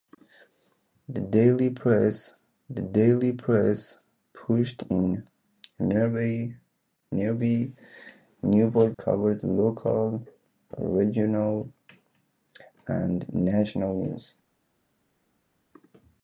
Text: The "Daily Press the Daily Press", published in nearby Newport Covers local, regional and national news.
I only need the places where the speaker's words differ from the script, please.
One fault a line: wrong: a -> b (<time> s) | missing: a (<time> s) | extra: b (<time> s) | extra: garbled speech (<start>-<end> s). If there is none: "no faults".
no faults